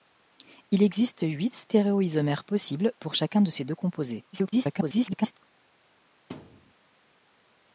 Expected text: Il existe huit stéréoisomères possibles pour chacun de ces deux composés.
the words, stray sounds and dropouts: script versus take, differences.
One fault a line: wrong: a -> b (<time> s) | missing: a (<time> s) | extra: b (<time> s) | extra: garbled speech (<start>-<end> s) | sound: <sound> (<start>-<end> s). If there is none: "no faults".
extra: garbled speech (4.3-5.4 s)
sound: thud (6.3-6.7 s)